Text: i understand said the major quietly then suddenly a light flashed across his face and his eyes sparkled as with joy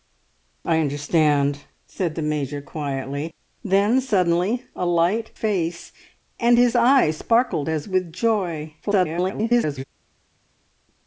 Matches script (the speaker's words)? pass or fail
fail